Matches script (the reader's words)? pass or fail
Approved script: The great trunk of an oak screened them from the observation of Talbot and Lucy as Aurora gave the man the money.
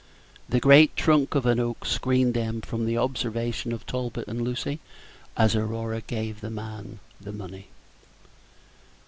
pass